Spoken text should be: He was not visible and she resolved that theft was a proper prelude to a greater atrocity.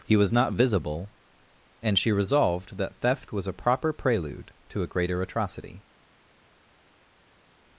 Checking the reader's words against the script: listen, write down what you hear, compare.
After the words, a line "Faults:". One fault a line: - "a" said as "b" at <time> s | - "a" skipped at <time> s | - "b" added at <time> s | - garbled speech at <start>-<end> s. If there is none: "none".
He was not visible and she resolved that theft was a proper prelude to a greater atrocity.
Faults:
none